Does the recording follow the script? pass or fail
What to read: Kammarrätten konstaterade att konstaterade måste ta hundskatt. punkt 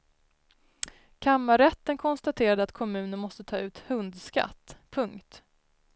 fail